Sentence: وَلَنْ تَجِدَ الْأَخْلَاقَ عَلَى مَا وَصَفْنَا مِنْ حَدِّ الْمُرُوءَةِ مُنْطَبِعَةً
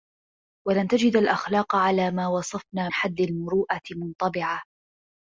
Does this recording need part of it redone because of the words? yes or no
yes